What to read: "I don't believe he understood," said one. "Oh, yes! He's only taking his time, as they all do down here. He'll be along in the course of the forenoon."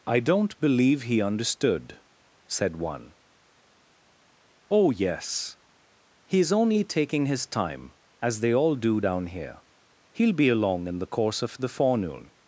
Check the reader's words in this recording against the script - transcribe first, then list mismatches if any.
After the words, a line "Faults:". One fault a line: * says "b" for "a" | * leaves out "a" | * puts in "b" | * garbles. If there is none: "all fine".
"I don't believe he understood," said one. "Oh, yes! He's only taking his time, as they all do down here. He'll be along in the course of the forenoon."
Faults:
all fine